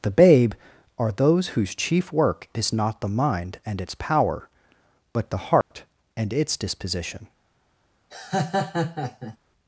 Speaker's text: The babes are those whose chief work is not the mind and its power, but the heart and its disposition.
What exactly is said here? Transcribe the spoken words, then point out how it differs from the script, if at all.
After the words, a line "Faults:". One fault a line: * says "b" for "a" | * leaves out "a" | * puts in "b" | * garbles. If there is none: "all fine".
The babe are those whose chief work is not the mind and its power, but the heart and its disposition.
Faults:
* says "babe" for "babes"